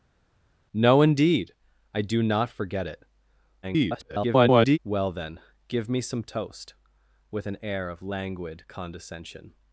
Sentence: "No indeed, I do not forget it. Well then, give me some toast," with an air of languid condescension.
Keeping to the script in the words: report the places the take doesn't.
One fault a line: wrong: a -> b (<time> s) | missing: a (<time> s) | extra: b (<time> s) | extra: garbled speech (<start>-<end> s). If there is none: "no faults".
extra: garbled speech (3.6-4.8 s)